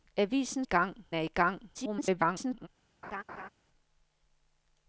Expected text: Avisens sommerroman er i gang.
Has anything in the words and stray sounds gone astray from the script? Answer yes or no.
yes